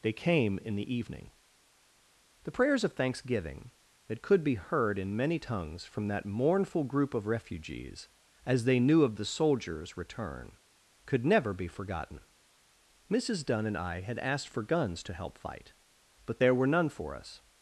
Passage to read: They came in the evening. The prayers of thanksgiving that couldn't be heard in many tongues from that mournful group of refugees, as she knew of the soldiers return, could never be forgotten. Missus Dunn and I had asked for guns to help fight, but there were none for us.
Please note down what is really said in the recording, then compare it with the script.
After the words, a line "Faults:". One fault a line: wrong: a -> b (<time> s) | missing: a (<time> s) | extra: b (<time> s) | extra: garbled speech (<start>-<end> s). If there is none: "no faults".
They came in the evening. The prayers of thanksgiving that could be heard in many tongues from that mournful group of refugees, as they knew of the soldiers return, could never be forgotten. Missus Dunn and I had asked for guns to help fight, but there were none for us.
Faults:
wrong: couldn't -> could (4.2 s)
wrong: she -> they (8.6 s)